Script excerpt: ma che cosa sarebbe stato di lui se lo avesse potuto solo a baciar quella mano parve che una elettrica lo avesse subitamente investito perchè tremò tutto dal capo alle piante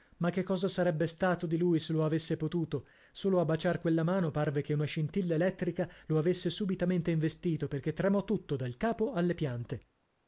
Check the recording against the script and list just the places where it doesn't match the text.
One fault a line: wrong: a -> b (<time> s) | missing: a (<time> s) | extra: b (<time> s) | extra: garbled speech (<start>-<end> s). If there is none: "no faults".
extra: scintilla (4.8 s)